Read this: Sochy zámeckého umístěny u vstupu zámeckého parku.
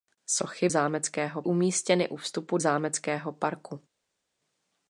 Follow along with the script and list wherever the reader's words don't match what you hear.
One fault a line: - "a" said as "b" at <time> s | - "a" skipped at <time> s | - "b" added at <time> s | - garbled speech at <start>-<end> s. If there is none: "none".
none